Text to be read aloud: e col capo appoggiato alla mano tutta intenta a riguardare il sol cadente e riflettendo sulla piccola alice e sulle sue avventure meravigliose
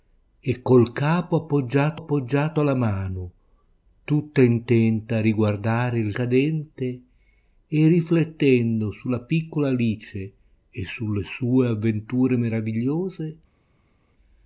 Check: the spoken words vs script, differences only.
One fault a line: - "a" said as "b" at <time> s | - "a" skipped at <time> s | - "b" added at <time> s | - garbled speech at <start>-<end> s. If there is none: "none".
- "appoggiato" added at 1.9 s
- "sol" skipped at 6.1 s